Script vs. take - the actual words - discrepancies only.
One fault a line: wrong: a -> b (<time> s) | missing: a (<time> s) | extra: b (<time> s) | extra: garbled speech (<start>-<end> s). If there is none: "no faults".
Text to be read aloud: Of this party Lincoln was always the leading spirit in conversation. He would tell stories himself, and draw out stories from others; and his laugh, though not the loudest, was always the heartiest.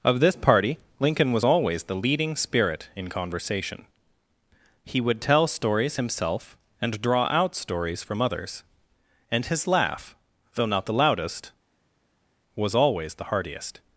no faults